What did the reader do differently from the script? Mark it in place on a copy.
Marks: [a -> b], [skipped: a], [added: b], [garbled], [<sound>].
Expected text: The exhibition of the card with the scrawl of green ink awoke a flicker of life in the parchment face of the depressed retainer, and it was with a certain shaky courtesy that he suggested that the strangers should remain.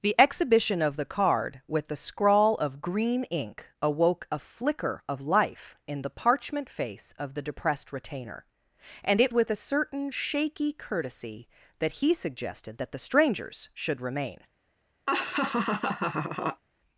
The exhibition of the card with the scrawl of green ink awoke a flicker of life in the parchment face of the depressed retainer, and it [skipped: was] with a certain shaky courtesy that he suggested that the strangers should remain. [laugh]